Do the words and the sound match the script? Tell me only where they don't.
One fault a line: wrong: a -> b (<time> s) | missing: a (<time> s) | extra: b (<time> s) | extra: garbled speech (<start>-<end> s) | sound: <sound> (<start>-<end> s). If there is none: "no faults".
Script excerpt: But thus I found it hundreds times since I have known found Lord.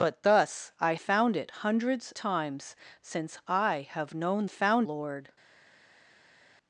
no faults